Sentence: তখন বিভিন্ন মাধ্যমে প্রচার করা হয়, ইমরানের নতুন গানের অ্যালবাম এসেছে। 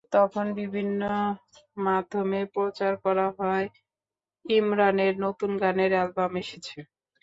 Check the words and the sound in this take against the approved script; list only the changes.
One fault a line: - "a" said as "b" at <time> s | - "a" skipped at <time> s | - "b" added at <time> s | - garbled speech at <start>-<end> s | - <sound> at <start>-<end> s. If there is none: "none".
none